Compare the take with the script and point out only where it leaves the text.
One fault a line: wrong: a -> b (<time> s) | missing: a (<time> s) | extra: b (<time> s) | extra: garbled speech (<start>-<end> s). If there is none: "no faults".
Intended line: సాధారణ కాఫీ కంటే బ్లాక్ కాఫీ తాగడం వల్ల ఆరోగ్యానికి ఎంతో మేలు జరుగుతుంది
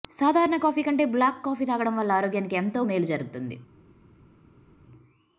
no faults